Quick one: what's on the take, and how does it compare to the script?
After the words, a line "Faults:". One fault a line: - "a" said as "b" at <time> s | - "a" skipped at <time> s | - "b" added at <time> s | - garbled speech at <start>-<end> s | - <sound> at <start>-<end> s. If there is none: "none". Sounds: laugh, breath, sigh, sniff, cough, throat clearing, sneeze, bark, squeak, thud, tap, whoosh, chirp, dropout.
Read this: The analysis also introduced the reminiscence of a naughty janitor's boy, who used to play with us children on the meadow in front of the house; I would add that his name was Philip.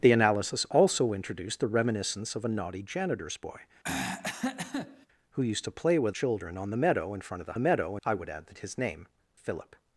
The analysis also introduced the reminiscence of a naughty janitor's boy, who used to play with children on the meadow in front of the meadow; I would add that his name Philip.
Faults:
- throat clearing at 3.8-5.1 s
- "us" skipped at 6.2 s
- "house" said as "meadow" at 7.6 s
- "was" skipped at 9.1 s